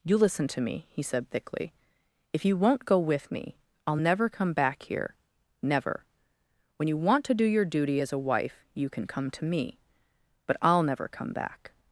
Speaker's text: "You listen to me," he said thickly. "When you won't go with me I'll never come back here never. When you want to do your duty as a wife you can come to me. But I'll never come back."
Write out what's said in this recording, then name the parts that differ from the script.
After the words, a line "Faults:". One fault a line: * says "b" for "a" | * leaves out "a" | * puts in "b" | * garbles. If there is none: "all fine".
"You listen to me," he said thickly. "If you won't go with me I'll never come back here never. When you want to do your duty as a wife you can come to me. But I'll never come back."
Faults:
* says "If" for "When"